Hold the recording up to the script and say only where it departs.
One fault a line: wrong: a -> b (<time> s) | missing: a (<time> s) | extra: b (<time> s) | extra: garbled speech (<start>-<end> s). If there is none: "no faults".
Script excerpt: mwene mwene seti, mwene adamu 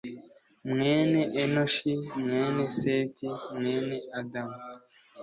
extra: enoshi (1.4 s)